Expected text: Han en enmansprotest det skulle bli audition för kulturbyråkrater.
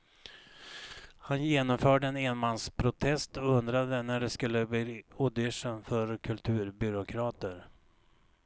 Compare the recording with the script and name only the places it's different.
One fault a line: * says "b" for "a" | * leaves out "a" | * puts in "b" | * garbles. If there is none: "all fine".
* puts in "genomförde"
* puts in "och undrade när"